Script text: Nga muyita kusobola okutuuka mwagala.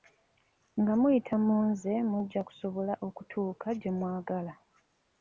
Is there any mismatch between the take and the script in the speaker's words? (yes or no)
yes